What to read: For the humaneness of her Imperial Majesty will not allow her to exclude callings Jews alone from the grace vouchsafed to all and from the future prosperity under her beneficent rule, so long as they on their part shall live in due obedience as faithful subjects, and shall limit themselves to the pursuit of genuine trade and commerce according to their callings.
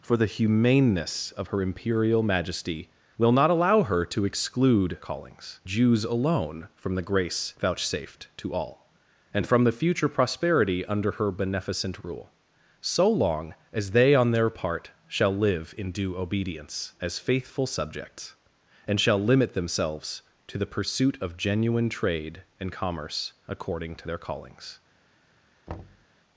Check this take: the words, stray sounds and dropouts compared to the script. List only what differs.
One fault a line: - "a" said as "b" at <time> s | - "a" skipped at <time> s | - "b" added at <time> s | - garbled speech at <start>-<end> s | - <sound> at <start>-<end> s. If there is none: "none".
- thud at 25.7-26.1 s